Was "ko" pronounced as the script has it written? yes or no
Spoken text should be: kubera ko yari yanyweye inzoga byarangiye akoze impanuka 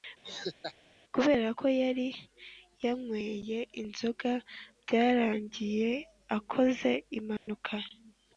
yes